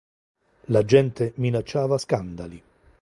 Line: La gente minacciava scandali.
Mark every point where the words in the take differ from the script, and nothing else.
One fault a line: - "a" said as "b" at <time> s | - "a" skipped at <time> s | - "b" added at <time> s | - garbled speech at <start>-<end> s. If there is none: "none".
none